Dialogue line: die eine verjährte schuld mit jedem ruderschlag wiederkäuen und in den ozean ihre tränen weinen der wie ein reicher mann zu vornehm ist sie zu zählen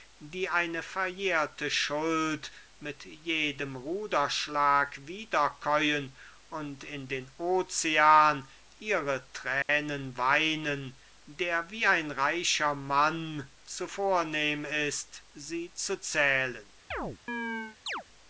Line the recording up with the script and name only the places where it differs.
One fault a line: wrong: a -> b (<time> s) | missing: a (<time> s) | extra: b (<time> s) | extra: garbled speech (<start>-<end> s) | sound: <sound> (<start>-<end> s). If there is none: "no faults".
sound: dropout (9.6-9.7 s)
sound: chirp (16.9-18.0 s)